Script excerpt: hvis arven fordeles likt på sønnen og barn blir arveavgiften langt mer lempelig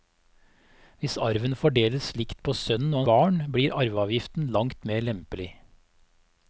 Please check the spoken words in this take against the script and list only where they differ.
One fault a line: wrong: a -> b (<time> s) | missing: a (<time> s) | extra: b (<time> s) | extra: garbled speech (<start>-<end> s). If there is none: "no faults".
no faults